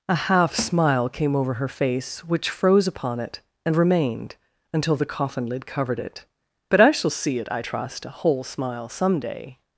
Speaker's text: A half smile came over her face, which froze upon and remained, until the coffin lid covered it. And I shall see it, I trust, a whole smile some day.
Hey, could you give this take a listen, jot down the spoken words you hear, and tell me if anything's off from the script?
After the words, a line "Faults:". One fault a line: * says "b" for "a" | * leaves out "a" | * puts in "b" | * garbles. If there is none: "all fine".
A half smile came over her face, which froze upon it, and remained, until the coffin lid covered it. But I shall see it, I trust, a whole smile some day.
Faults:
* puts in "it"
* says "But" for "And"